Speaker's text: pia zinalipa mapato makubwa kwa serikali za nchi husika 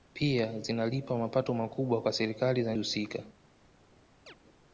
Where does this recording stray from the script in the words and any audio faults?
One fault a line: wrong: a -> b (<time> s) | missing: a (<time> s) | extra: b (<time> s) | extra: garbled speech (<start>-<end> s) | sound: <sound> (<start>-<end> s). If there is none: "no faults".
missing: nchi (2.8 s)
sound: chirp (4.3-4.4 s)